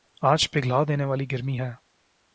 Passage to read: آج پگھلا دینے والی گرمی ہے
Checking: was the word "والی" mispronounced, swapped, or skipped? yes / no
no